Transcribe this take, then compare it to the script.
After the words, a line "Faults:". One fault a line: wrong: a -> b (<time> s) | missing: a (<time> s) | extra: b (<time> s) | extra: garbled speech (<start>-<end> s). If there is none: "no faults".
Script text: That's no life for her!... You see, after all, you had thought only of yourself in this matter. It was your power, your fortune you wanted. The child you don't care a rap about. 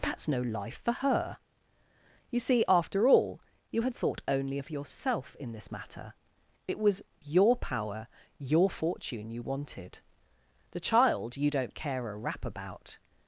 That's no life for her!... You see, after all, you had thought only of yourself in this matter. It was your power, your fortune you wanted. The child you don't care a rap about.
Faults:
no faults